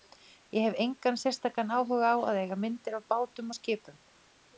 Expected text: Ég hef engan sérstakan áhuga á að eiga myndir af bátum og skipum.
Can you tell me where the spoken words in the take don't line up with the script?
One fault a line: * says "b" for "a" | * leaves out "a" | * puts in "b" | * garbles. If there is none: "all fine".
all fine